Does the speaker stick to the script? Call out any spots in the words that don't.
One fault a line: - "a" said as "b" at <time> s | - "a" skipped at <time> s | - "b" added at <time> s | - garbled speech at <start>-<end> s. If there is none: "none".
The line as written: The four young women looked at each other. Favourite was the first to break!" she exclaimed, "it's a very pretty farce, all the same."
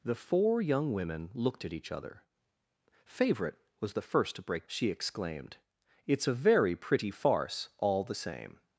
none